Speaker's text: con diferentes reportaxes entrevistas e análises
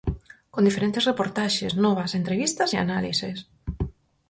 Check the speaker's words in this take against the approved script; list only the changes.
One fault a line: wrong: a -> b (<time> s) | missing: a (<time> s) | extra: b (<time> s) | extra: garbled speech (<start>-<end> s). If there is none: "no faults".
extra: novas (1.9 s)